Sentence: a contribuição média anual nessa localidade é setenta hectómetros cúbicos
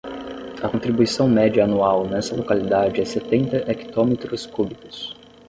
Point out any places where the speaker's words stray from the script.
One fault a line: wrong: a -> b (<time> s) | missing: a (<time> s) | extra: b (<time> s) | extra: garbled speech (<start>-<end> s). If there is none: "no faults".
no faults